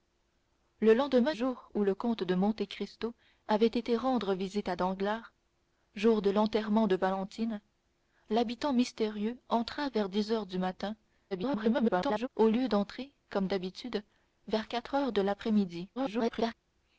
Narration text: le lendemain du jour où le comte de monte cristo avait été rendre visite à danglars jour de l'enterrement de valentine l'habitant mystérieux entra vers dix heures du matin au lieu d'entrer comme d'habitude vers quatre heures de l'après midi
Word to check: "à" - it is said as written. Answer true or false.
true